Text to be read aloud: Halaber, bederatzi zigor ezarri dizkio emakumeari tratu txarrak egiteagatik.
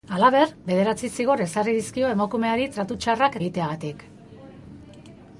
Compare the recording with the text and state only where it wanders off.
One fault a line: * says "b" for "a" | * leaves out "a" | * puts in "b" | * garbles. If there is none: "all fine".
all fine